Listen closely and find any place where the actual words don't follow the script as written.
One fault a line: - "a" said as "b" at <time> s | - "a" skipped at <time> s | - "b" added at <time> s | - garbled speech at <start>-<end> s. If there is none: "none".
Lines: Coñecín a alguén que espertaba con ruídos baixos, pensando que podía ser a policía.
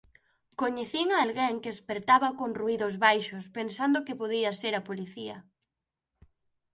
none